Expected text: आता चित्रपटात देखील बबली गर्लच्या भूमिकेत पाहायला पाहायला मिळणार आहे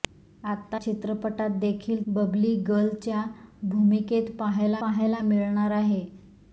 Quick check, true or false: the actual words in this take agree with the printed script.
true